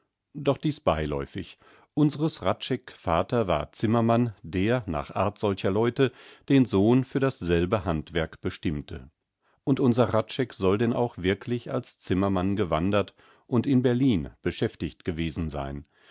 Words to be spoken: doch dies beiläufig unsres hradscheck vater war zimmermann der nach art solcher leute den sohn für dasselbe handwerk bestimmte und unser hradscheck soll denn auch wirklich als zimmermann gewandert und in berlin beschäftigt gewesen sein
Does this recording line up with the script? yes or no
yes